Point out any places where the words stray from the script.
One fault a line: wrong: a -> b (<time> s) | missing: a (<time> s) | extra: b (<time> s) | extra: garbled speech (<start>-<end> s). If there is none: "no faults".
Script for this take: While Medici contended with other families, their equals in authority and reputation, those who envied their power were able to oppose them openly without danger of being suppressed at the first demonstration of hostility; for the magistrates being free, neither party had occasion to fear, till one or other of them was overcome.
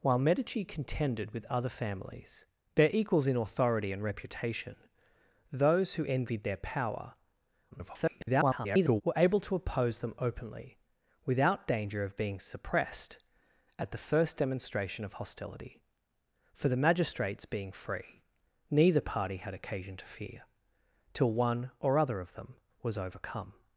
extra: garbled speech (7.7-9.0 s)